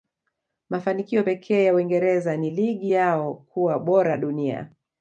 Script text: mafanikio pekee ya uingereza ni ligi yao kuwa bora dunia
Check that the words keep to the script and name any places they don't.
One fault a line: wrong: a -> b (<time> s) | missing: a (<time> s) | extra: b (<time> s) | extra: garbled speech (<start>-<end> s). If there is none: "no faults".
no faults